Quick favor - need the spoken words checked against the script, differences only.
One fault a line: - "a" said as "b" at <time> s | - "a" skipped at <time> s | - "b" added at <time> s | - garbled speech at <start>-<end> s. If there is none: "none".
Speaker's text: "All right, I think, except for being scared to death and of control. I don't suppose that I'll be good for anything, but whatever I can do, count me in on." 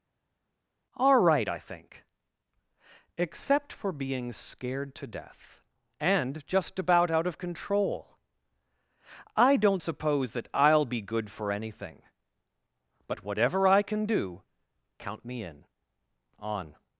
- "just about out" added at 6.5 s